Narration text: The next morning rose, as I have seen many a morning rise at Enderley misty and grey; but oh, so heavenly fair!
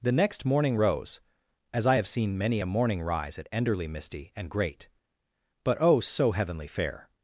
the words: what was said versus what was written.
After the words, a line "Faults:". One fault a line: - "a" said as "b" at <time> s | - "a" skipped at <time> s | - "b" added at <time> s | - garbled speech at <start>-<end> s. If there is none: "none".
The next morning rose, as I have seen many a morning rise at Enderley misty and great; but oh, so heavenly fair!
Faults:
- "grey" said as "great" at 4.5 s